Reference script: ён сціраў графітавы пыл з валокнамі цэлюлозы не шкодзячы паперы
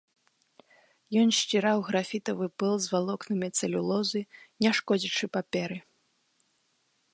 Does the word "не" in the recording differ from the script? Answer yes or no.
no